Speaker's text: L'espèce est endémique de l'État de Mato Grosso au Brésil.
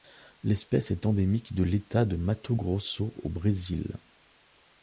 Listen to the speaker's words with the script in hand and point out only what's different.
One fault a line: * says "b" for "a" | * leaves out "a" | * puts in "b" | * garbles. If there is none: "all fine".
all fine